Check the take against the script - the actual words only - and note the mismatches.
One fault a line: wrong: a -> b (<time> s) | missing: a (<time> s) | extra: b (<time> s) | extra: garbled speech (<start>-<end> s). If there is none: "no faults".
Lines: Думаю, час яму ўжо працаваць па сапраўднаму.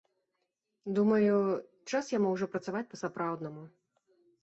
no faults